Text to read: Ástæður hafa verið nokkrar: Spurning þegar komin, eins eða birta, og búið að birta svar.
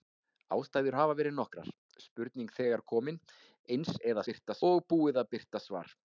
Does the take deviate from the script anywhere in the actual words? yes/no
no